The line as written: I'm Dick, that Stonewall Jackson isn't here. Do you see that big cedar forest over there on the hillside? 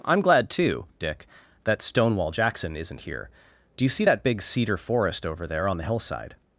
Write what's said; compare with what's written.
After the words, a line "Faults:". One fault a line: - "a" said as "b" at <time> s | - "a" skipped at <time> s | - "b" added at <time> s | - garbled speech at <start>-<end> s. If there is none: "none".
I'm glad, too, Dick, that Stonewall Jackson isn't here. Do you see that big cedar forest over there on the hillside?
Faults:
- "glad too" added at 0.2 s